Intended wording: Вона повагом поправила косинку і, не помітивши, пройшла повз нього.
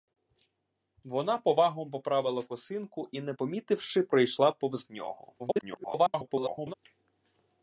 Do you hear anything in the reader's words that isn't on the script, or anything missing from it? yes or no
yes